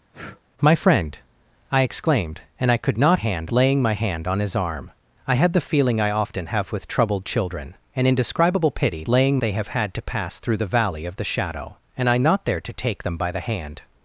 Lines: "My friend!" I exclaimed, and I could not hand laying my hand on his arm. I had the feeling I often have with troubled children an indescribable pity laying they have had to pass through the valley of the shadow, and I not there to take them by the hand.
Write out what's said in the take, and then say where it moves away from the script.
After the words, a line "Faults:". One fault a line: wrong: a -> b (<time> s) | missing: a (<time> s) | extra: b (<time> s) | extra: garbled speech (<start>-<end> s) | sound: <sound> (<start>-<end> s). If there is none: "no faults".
"My friend!" I exclaimed, and I could not hand laying my hand on his arm. I had the feeling I often have with troubled children an indescribable pity laying they have had to pass through the valley of the shadow, and I not there to take them by the hand.
Faults:
sound: breath (0.1-0.4 s)